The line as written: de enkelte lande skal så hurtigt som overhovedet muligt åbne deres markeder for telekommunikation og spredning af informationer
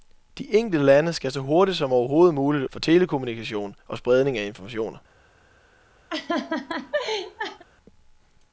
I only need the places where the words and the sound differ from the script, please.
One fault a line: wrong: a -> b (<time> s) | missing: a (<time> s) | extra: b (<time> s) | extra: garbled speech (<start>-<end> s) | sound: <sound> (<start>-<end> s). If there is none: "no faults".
missing: åbne deres markeder (2.6 s)
sound: laugh (6.1-7.6 s)